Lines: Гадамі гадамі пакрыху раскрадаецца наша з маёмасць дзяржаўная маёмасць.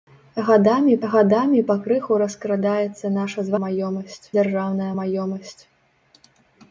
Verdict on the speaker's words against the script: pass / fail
pass